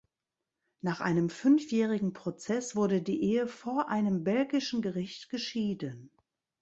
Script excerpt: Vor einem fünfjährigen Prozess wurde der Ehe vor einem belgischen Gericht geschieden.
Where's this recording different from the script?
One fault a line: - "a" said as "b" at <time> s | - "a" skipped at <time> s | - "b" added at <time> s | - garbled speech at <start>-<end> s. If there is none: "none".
- "Vor" said as "Nach" at 0.8 s
- "der" said as "die" at 3.0 s